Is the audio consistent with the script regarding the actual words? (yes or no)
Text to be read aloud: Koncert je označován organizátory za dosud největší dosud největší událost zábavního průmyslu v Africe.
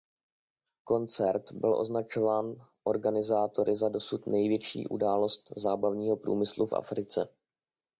no